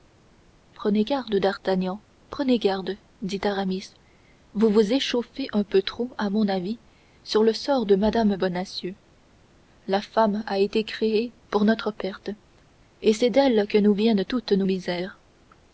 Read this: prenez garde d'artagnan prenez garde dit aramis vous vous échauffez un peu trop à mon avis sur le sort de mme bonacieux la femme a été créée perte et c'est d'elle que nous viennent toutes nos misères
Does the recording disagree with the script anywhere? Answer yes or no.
yes